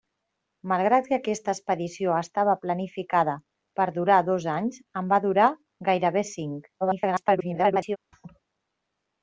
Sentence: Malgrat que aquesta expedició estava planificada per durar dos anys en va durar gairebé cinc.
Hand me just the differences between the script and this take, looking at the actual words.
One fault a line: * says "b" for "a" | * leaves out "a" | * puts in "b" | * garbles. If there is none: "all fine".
* garbles